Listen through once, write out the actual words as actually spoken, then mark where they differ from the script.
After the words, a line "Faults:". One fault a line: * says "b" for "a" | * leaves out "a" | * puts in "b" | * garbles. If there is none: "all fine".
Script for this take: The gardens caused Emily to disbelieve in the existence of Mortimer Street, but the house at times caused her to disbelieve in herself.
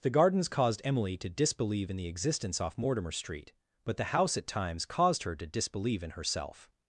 The gardens caused Emily to disbelieve in the existence off Mortimer Street, but the house at times caused her to disbelieve in herself.
Faults:
* says "off" for "of"